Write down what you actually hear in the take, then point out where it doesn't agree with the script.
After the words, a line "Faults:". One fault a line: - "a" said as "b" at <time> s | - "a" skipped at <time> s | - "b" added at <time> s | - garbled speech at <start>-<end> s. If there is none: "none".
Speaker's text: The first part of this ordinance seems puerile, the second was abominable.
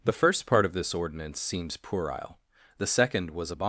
The first part of this ordinance seems puerile, the second was abominable.
Faults:
none